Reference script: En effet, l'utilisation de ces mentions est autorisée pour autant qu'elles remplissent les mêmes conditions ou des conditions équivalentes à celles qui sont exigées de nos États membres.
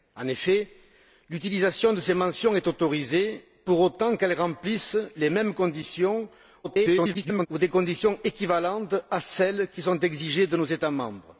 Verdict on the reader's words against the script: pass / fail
fail